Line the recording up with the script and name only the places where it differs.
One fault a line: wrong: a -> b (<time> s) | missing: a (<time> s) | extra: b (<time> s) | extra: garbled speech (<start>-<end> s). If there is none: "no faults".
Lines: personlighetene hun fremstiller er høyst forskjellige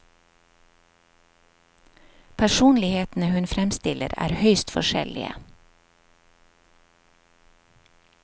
no faults